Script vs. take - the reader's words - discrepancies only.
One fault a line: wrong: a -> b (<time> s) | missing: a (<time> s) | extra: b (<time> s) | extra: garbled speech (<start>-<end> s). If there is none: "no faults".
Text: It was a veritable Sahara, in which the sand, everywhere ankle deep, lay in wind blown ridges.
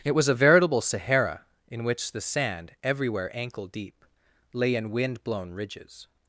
no faults